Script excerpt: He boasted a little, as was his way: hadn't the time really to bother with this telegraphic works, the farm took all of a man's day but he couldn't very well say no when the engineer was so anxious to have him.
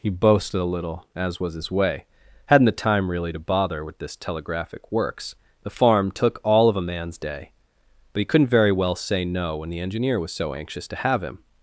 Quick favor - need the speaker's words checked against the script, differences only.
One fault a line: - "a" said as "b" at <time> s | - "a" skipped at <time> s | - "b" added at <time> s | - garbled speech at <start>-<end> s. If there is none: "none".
none